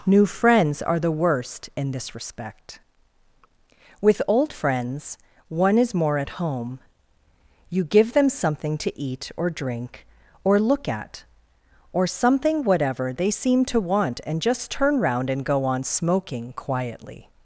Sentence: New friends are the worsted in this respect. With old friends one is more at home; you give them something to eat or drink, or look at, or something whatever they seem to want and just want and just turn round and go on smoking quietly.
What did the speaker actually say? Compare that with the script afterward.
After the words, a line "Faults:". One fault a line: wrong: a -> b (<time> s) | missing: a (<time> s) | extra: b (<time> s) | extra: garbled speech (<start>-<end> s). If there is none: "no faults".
New friends are the worst in this respect. With old friends one is more at home; you give them something to eat or drink, or look at, or something whatever they seem to want and just turn round and go on smoking quietly.
Faults:
wrong: worsted -> worst (1.1 s)
missing: want and just (14.7 s)